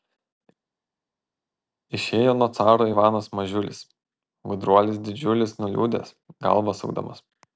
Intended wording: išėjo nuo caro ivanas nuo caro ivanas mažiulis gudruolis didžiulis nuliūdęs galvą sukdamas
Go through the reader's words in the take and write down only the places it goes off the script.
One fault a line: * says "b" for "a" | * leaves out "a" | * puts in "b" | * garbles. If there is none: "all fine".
* leaves out "nuo caro ivanas"